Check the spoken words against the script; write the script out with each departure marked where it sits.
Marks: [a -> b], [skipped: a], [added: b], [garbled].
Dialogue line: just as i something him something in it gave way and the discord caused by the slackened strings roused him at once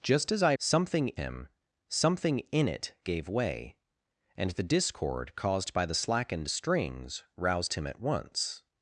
just as i something him something in it gave way and the discord caused by the slackened strings roused him at once